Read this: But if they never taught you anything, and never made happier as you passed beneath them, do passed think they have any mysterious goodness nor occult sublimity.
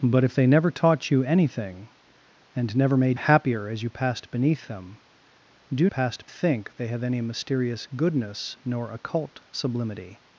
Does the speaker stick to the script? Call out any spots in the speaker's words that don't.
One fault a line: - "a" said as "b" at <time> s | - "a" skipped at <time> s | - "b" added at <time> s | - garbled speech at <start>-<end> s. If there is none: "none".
none